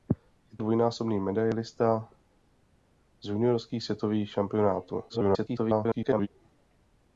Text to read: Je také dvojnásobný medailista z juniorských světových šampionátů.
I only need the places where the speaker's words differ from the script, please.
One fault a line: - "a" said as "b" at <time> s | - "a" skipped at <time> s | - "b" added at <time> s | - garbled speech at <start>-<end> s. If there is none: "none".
- "také" skipped at 0.6 s
- garbled speech at 5.1-6.3 s